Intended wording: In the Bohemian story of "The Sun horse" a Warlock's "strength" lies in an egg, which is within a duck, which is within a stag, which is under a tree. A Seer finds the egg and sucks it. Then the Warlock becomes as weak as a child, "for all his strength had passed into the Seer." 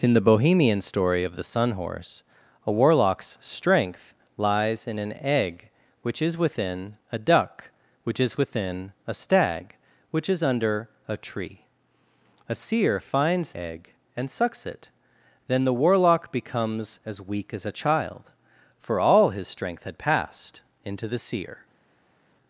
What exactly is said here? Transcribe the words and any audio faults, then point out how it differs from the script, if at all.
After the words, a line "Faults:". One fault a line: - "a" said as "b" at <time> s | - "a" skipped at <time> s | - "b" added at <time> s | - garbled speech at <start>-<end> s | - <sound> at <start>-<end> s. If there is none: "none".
In the Bohemian story of "The Sun horse" a Warlock's "strength" lies in an egg, which is within a duck, which is within a stag, which is under a tree. A Seer finds egg and sucks it. Then the Warlock becomes as weak as a child, "for all his strength had passed into the Seer."
Faults:
- "the" skipped at 13.5 s